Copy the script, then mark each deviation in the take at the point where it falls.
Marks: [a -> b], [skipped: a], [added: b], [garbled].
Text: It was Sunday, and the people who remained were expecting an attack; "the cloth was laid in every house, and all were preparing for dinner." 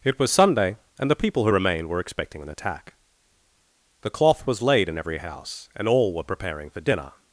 It was Sunday, and the people who remained were expecting an attack; "the cloth was laid in every house, and all were preparing for dinner."